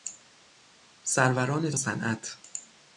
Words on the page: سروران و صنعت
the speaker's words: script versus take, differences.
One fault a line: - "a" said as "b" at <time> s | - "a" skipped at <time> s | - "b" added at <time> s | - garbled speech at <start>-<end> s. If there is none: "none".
none